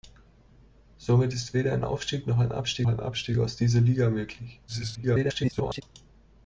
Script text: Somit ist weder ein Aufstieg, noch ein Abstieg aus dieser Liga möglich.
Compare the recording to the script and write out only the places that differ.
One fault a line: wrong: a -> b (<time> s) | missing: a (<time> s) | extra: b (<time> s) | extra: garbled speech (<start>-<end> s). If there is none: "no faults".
extra: ein Abstieg (2.9 s)
extra: garbled speech (4.7-5.8 s)